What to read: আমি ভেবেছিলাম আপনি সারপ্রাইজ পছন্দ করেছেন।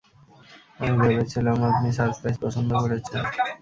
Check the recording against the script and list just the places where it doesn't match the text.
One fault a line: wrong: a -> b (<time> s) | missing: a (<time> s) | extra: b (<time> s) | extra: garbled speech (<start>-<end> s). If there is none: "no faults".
no faults